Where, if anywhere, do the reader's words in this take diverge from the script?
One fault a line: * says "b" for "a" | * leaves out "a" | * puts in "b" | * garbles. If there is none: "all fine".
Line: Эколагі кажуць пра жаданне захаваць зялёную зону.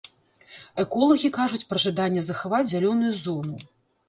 all fine